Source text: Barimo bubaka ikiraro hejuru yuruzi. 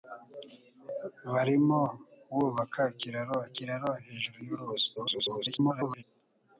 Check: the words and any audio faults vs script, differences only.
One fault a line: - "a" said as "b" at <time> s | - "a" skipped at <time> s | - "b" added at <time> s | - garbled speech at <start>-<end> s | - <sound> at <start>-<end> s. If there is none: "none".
- "ikiraro" added at 3.5 s
- garbled speech at 5.0-6.0 s